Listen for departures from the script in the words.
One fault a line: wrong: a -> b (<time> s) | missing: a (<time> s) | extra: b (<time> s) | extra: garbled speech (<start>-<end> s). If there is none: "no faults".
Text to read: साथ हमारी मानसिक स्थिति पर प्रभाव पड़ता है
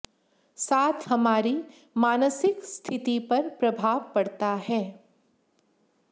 no faults